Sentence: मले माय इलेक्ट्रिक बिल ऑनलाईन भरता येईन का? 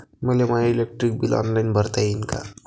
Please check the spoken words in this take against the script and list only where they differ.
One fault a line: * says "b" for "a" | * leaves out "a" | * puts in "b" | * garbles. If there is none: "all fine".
all fine